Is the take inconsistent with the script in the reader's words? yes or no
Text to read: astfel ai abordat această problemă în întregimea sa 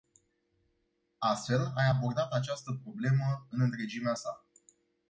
no